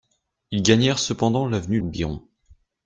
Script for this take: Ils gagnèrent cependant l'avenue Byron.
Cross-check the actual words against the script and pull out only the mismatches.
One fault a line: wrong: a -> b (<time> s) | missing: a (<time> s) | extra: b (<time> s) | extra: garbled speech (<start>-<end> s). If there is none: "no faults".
no faults